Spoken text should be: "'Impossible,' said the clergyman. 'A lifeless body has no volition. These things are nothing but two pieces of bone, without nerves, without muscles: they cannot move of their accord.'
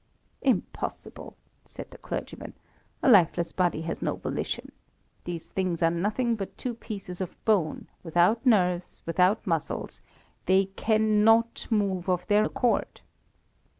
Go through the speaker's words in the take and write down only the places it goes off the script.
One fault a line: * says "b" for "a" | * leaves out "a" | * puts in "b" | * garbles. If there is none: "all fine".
all fine